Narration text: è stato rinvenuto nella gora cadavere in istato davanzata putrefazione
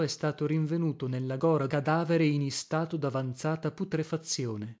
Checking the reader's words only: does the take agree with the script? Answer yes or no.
yes